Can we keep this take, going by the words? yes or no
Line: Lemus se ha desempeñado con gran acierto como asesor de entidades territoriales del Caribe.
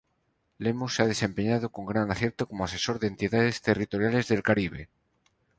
yes